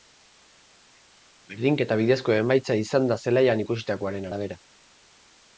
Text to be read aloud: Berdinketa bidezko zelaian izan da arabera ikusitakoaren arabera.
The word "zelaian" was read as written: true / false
false